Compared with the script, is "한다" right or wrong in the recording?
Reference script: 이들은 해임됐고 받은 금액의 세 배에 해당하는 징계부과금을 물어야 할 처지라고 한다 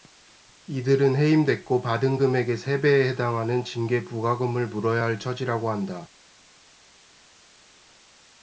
right